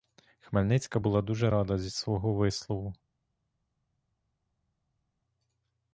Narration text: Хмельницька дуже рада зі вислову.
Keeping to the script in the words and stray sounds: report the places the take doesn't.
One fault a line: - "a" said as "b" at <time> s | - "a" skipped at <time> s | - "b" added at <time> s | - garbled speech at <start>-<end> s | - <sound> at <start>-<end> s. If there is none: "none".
- "була" added at 1.0 s
- "свого" added at 1.9 s